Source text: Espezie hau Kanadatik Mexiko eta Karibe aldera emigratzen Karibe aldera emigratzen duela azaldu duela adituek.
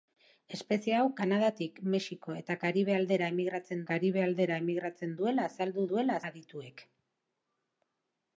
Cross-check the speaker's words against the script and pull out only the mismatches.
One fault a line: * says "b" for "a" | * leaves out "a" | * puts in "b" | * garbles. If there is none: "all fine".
all fine